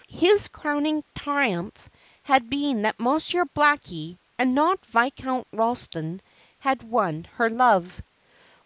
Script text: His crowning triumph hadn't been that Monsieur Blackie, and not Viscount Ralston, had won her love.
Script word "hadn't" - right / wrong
wrong